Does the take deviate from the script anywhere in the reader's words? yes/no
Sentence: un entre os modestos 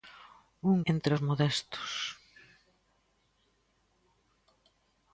no